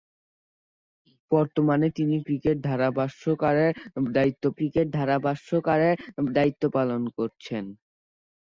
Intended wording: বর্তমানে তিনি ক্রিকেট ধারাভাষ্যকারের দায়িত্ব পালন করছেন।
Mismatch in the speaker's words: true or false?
true